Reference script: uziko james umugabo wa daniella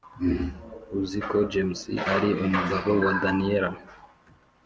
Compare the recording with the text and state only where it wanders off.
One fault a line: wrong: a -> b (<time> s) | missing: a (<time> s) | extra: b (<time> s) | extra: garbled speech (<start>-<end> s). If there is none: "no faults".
extra: ari (2.1 s)